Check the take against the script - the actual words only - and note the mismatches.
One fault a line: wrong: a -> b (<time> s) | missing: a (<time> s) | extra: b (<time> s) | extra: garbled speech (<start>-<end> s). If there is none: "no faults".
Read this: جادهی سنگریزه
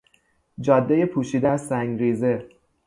extra: پوشیده از (1.1 s)